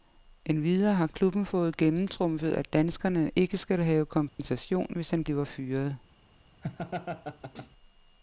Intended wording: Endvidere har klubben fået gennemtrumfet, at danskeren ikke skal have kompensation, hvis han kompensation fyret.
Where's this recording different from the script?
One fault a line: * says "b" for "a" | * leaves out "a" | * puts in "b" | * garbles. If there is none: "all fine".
* says "bliver" for "kompensation"